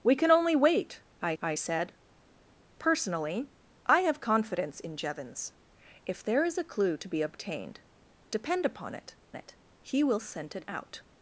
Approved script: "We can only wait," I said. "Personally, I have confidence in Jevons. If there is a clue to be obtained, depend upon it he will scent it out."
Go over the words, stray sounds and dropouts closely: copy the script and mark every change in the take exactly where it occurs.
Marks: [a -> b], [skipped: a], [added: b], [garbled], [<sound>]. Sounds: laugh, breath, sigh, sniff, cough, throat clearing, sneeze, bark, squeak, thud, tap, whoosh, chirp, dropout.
"We can only wait," I [added: I] said. "Personally, I have confidence in Jevons. If there is a clue to be obtained, depend upon it [added: it] he will scent it out."